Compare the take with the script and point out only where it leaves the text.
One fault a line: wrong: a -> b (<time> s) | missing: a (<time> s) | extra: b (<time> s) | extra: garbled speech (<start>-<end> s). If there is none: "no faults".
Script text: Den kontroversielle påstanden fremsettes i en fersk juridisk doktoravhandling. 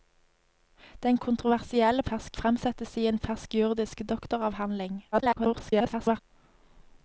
wrong: påstanden -> fersk (2.0 s)
extra: garbled speech (5.1-6.2 s)